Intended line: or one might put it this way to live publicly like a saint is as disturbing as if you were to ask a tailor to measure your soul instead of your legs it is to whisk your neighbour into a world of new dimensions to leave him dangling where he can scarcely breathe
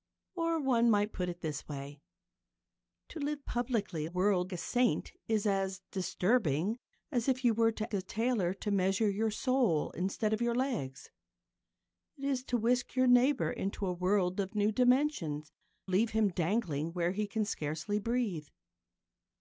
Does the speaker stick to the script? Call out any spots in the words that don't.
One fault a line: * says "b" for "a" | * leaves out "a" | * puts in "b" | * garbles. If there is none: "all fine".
* says "world" for "like"
* leaves out "ask"
* leaves out "to"